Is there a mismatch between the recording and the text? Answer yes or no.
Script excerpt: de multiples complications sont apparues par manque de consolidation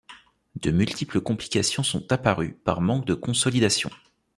no